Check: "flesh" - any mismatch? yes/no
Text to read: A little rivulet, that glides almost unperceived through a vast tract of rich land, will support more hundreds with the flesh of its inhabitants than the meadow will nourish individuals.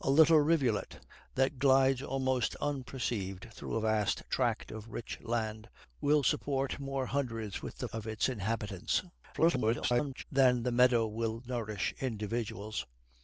yes